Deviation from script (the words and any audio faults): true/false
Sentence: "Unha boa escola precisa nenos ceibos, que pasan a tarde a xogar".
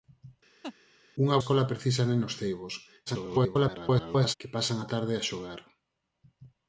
true